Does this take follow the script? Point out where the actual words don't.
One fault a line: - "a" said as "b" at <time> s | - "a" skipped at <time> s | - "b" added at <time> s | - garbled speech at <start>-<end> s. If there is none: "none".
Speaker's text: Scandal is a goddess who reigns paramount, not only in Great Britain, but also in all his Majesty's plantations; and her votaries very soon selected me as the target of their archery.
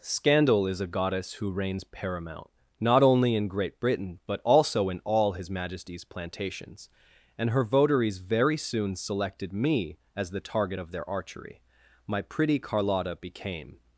- "My pretty Carlotta became" added at 12.1 s